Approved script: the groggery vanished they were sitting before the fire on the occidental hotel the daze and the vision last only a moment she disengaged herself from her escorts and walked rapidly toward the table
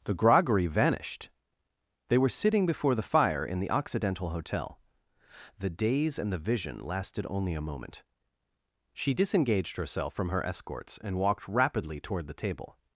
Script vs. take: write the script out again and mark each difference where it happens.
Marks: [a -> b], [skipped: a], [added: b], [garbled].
the groggery vanished they were sitting before the fire [on -> in] the occidental hotel the daze and the vision [last -> lasted] only a moment she disengaged herself from her escorts and walked rapidly toward the table